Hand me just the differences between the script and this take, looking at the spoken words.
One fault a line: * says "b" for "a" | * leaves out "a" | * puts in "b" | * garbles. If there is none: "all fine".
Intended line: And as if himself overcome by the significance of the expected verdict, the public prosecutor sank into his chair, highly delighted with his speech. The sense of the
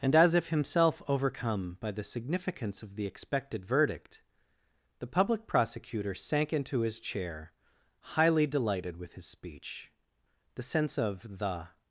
all fine